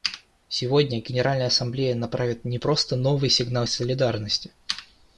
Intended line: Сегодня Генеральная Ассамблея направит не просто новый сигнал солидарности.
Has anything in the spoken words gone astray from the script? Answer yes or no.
no